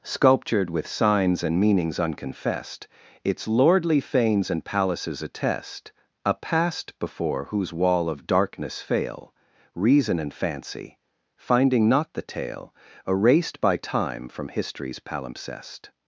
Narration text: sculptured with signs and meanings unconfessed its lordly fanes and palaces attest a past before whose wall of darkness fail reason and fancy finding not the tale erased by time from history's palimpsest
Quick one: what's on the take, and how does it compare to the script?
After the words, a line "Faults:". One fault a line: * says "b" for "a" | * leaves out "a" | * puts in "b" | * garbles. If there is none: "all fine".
sculptured with signs and meanings unconfessed its lordly fanes and palaces attest a past before whose wall of darkness fail reason and fancy finding not the tale erased by time from history's palimpsest
Faults:
all fine